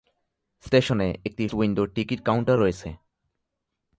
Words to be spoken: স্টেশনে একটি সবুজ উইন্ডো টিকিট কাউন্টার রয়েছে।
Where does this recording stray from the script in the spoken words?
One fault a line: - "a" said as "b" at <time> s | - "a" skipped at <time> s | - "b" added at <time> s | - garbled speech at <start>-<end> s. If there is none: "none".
- "সবুজ" skipped at 1.4 s